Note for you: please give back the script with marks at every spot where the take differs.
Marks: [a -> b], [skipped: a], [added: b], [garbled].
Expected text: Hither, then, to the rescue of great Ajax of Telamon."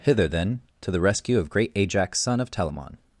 Hither, then, to the rescue of great Ajax [added: son] of Telamon."